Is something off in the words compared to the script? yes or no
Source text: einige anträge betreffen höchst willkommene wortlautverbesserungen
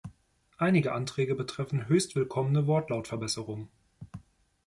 no